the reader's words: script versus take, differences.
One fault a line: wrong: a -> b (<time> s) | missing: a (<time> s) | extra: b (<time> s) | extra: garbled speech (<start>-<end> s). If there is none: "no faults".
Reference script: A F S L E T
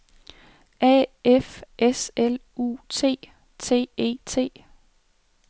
extra: U T T (2.6 s)